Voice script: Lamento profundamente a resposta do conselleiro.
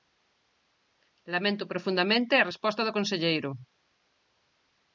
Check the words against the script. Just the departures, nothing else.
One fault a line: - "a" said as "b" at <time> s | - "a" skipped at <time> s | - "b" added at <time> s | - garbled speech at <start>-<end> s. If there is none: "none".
none